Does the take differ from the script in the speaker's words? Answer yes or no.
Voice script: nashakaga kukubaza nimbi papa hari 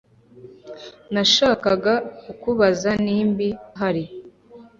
yes